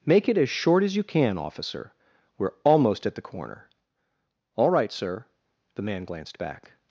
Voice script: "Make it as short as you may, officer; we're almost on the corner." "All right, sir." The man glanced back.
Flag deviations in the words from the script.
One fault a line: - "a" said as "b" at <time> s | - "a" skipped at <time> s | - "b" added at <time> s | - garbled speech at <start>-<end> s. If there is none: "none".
- "may" said as "can" at 1.0 s
- "on" said as "at" at 3.0 s